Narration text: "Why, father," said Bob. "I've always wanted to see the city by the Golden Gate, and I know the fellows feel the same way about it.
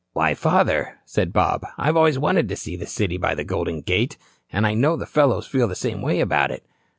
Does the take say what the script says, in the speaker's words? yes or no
yes